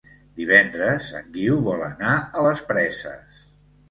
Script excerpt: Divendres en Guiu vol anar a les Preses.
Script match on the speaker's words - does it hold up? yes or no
yes